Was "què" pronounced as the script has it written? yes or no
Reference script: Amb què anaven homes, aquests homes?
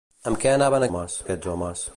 yes